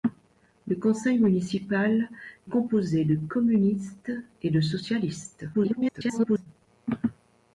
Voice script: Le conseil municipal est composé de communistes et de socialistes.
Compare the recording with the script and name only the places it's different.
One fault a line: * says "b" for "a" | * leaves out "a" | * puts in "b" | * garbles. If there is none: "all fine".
* leaves out "est"
* garbles